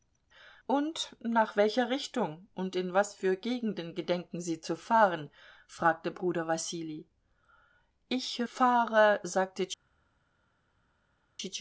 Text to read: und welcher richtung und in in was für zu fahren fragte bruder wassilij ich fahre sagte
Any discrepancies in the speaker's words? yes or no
yes